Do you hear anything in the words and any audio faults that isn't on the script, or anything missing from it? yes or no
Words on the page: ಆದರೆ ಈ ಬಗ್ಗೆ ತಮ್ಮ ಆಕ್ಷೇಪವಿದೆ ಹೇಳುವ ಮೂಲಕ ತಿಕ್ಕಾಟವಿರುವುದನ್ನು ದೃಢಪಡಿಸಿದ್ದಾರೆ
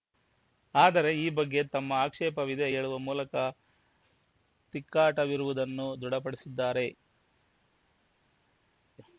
no